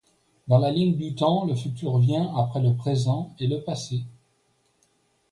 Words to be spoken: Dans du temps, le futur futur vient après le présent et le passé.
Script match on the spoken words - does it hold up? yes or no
no